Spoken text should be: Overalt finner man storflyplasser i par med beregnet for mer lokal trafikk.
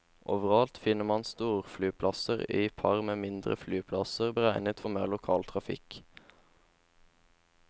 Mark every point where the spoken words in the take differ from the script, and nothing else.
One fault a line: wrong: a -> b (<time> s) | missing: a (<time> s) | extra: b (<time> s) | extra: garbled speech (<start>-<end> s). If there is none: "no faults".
extra: mindre flyplasser (3.2 s)